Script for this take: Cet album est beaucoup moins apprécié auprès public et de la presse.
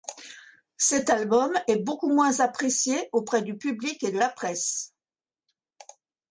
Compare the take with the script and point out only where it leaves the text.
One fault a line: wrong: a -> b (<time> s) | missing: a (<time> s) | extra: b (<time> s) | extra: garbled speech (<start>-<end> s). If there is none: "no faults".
extra: du (3.4 s)